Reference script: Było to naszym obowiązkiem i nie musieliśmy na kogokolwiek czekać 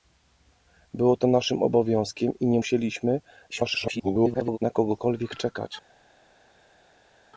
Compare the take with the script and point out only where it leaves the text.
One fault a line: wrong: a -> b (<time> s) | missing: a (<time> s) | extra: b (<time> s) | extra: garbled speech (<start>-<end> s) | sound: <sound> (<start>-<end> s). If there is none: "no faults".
extra: garbled speech (3.5-4.6 s)